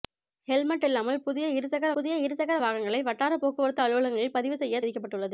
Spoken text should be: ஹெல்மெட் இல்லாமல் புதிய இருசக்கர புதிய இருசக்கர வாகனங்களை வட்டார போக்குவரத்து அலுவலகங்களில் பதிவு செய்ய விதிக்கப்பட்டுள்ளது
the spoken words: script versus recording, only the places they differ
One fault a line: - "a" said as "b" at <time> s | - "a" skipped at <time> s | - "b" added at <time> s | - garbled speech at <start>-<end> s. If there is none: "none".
none